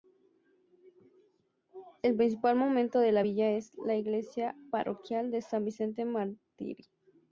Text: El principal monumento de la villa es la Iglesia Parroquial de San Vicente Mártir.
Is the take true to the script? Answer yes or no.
yes